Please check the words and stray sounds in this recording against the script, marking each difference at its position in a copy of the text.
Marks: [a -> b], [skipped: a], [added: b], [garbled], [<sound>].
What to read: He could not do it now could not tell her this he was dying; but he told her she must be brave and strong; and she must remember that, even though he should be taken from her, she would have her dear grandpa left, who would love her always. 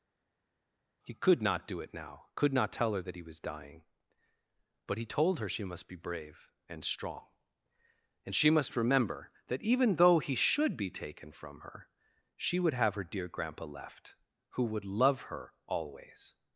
He could not do it now could not tell her [this -> that] he was dying; but he told her she must be brave and strong; and she must remember that, even though he should be taken from her, she would have her dear grandpa left, who would love her always.